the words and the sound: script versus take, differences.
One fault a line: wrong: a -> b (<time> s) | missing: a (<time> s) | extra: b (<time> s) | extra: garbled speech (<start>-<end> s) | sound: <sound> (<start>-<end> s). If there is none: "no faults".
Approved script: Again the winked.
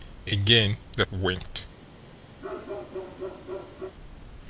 sound: bark (2.4-4.0 s)